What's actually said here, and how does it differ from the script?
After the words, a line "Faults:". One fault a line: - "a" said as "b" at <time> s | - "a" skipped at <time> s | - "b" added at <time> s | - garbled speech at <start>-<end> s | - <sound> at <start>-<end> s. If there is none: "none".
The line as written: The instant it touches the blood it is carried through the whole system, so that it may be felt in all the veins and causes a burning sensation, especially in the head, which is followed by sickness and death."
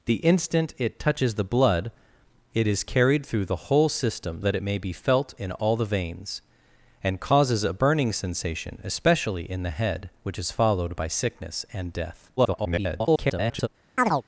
The instant it touches the blood it is carried through the whole system, that it may be felt in all the veins and causes a burning sensation, especially in the head, which is followed by sickness and death." [garbled]
Faults:
- "so" skipped at 4.4 s
- garbled speech at 12.4-13.7 s
- chirp at 14.0-14.2 s